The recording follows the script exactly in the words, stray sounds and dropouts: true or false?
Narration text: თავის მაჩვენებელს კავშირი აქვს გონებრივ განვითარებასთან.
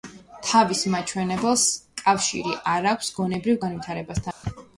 false